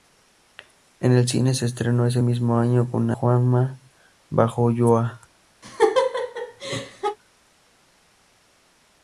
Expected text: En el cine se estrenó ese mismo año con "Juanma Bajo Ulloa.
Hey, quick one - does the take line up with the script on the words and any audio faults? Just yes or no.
no